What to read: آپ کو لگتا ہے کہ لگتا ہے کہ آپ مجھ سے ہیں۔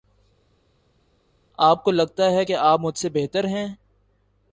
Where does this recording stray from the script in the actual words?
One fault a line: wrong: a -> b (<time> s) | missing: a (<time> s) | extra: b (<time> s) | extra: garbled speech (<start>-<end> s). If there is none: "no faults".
missing: لگتا ہے کہ (2.5 s)
extra: بہتر (3.1 s)